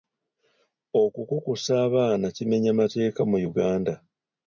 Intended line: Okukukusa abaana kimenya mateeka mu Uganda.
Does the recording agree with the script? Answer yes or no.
yes